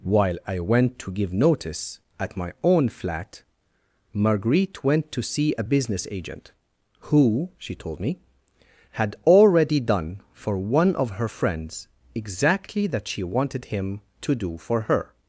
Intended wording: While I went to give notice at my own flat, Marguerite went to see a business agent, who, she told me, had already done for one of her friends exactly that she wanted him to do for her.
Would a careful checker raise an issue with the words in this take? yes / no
no